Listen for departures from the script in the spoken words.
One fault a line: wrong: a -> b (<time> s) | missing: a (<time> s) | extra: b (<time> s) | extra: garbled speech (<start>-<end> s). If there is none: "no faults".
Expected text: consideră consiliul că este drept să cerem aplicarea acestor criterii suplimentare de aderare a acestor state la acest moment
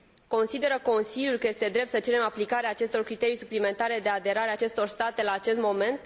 no faults